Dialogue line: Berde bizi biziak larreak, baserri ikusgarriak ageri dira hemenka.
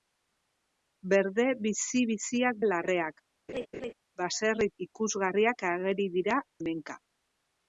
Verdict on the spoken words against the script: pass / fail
pass